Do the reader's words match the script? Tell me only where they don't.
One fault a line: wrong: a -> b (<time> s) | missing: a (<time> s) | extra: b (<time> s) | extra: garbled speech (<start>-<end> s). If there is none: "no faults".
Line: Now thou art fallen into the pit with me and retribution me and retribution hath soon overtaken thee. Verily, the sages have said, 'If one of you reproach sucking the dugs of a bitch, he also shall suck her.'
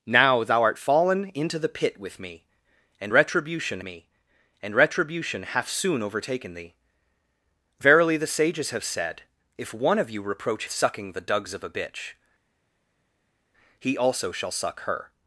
no faults